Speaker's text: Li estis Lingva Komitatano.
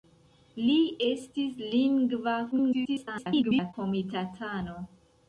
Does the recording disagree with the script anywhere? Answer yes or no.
yes